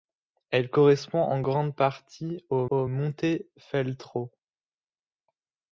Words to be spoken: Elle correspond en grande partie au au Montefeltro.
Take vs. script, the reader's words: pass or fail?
pass